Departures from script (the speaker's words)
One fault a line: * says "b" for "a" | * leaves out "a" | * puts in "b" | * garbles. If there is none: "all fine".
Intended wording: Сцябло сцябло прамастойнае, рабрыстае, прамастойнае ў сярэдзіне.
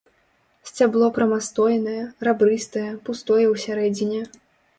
* leaves out "сцябло"
* says "пустое" for "прамастойнае"